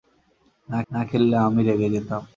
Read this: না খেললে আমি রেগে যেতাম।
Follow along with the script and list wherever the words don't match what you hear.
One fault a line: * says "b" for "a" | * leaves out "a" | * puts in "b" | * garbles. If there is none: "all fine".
* puts in "না"